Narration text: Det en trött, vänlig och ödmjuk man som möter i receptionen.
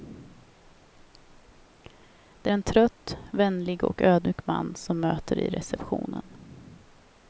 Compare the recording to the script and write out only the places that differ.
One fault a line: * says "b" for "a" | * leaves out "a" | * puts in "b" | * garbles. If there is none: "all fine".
all fine